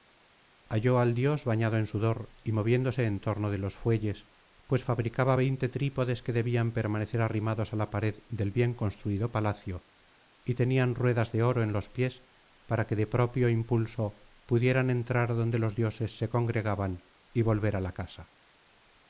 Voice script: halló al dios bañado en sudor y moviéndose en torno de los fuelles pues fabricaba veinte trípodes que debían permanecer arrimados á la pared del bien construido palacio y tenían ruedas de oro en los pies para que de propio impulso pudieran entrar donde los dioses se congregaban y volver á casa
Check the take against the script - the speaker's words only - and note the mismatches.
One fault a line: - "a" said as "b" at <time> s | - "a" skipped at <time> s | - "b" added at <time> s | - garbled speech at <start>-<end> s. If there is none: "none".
- "la" added at 17.8 s